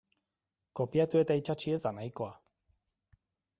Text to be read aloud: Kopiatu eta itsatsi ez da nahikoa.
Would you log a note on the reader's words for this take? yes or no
no